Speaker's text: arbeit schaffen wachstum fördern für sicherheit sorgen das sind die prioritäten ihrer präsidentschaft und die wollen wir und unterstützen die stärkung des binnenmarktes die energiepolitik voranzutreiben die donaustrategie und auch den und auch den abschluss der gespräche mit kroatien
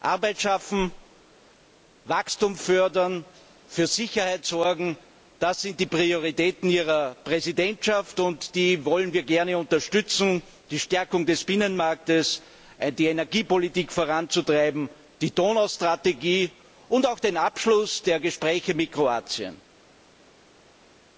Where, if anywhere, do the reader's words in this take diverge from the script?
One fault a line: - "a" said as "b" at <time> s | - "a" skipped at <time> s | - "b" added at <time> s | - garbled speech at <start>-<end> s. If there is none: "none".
- "und" said as "gerne" at 9.2 s
- "und auch den" skipped at 17.4 s